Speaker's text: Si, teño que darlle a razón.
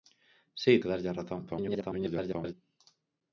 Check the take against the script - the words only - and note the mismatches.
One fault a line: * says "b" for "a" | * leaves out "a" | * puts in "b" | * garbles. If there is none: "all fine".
* leaves out "teño"
* garbles